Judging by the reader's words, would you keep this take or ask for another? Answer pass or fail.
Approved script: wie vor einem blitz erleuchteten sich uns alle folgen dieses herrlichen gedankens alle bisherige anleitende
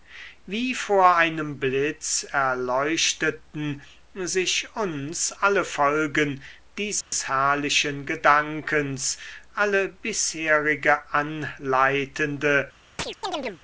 pass